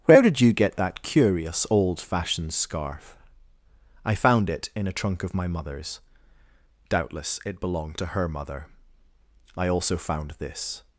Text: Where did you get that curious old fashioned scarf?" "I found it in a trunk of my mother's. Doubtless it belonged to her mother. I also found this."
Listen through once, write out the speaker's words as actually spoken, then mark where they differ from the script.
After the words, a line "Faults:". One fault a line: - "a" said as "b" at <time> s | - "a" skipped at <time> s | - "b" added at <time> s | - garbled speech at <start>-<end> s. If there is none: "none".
Where did you get that curious old fashioned scarf?" "I found it in a trunk of my mother's. Doubtless it belonged to her mother. I also found this."
Faults:
none